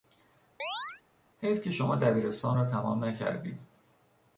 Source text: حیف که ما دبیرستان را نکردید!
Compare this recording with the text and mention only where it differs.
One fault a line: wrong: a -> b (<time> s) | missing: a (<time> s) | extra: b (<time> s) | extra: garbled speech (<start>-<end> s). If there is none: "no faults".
wrong: ما -> شما (1.7 s)
extra: تمام (2.6 s)